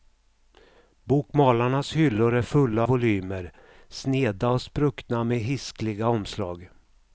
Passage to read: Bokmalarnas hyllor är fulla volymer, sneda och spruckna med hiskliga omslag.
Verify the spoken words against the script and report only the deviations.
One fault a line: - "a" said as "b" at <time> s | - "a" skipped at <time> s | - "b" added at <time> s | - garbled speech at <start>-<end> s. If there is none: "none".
none